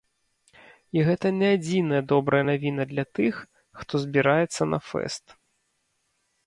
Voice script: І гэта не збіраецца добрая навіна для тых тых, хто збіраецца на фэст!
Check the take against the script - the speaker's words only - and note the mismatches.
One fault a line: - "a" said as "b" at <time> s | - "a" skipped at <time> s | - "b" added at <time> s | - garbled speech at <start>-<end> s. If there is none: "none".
- "збіраецца" said as "адзіная" at 1.6 s
- "тых" skipped at 3.3 s